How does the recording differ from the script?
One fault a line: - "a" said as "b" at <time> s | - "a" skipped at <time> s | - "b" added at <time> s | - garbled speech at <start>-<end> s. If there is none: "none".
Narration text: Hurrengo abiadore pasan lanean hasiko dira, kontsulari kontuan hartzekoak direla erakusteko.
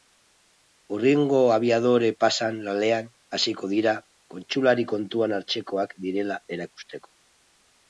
none